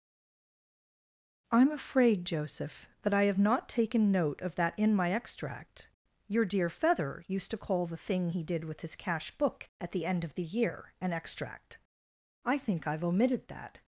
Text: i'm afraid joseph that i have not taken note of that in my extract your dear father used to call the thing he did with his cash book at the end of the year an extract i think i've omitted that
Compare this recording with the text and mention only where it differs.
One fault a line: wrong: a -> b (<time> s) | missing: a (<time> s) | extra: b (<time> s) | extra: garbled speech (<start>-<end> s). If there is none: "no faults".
wrong: father -> feather (6.7 s)